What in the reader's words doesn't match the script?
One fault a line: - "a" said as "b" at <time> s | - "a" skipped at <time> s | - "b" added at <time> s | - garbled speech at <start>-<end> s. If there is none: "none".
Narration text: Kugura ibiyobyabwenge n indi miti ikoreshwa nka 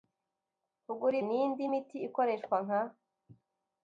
- "ibiyobyabwenge" skipped at 1.1 s